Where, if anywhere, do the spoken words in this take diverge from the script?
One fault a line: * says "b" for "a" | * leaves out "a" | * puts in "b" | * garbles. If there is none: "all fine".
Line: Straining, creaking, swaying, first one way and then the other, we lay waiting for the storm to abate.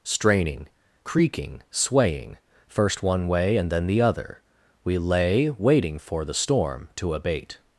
all fine